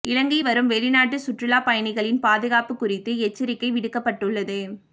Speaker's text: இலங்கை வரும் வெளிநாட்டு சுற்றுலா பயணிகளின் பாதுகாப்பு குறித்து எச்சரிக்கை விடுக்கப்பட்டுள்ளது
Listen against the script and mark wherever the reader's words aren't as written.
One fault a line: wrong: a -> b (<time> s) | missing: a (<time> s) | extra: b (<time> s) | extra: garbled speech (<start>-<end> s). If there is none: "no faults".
no faults